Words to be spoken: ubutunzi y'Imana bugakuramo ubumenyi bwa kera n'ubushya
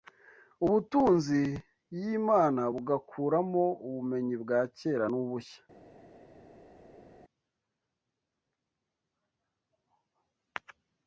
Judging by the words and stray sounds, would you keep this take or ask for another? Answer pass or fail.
pass